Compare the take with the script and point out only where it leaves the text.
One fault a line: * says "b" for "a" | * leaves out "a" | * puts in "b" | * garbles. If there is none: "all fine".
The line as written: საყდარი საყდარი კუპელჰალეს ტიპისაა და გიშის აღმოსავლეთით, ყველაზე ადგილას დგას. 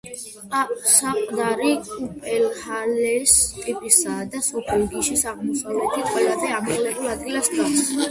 * leaves out "საყდარი"
* puts in "სოფელ"
* puts in "ამაღლებულ"